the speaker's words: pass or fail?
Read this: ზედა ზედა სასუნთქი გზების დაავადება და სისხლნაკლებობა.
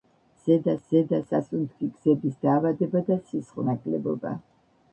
pass